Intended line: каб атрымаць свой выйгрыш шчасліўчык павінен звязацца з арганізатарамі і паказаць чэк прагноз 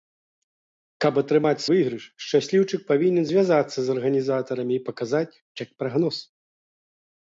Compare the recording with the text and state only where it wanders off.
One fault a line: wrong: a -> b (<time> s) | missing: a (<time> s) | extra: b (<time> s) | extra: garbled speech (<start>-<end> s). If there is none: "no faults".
missing: свой (1.6 s)